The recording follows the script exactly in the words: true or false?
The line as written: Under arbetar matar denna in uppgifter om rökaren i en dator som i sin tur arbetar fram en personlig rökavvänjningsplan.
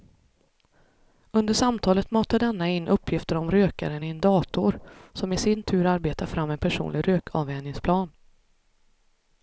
false